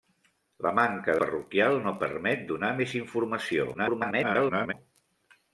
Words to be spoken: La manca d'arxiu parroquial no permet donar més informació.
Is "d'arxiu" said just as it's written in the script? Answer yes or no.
no